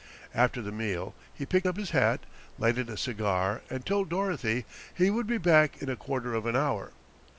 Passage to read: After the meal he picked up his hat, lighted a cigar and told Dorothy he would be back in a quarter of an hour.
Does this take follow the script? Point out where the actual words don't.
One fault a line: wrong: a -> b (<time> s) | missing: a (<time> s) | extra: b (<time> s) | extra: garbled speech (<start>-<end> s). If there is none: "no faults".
no faults